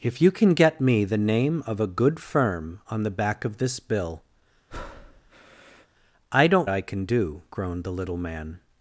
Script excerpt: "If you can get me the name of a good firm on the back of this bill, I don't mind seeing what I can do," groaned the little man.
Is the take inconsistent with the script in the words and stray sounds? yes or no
yes